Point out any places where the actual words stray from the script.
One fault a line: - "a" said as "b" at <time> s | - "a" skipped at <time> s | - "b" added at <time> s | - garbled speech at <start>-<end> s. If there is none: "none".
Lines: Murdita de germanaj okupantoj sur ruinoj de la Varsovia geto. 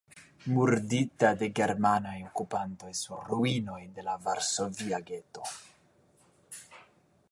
none